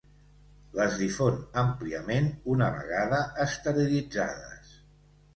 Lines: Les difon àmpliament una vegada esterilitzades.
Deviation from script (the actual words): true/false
false